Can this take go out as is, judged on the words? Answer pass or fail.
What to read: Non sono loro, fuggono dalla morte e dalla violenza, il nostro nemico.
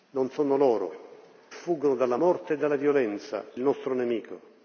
pass